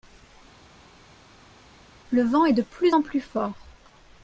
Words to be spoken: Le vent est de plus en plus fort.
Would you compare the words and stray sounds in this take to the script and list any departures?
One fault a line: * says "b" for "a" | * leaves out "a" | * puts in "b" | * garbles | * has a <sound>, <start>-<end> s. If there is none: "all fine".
all fine